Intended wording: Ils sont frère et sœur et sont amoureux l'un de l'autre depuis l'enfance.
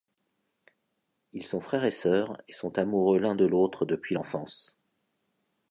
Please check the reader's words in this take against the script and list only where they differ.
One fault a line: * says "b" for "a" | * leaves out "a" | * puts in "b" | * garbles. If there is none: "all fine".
all fine